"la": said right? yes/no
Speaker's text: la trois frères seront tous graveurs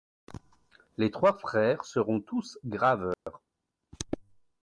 no